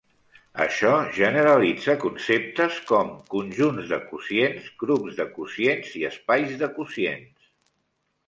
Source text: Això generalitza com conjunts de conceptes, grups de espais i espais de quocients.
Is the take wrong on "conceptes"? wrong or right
wrong